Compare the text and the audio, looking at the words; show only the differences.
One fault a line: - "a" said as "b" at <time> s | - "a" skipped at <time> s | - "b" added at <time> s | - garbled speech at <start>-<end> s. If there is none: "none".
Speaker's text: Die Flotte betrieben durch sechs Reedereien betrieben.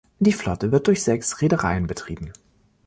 - "betrieben" said as "wird" at 0.7 s